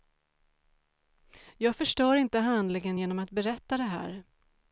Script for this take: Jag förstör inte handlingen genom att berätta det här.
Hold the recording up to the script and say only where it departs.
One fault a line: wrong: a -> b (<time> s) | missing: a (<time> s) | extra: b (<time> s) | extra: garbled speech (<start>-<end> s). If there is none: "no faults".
no faults